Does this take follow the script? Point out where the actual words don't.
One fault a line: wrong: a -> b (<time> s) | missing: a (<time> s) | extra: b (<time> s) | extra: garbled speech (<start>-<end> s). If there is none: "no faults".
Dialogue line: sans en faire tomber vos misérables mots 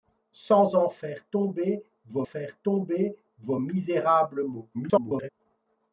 extra: faire tomber vos (2.2 s)
extra: garbled speech (4.7-5.3 s)